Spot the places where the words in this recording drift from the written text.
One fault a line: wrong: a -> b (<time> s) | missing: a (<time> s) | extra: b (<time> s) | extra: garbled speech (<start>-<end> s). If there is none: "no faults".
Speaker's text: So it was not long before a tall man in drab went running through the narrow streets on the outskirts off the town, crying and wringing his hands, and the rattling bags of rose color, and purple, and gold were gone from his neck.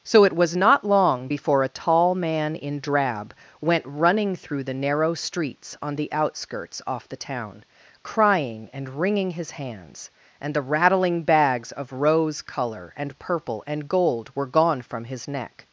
no faults